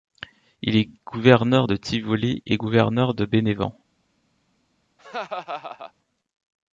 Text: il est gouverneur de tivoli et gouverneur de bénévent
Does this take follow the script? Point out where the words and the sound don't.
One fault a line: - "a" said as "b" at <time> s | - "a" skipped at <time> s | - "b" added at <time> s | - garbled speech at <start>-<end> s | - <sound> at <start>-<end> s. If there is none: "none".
- laugh at 5.0-5.9 s